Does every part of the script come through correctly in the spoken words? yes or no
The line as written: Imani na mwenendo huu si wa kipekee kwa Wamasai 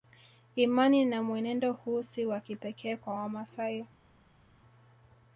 yes